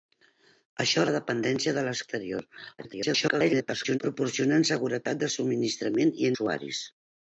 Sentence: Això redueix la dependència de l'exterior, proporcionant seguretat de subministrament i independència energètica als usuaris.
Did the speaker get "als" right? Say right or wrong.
wrong